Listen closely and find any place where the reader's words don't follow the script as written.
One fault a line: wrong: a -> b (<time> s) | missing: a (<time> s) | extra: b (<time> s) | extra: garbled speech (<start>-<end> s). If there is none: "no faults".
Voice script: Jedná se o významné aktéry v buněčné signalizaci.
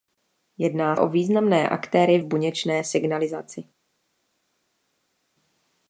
missing: se (1.0 s)